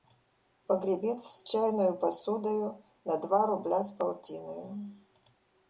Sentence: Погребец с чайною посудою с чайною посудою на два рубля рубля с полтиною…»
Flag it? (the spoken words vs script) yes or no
yes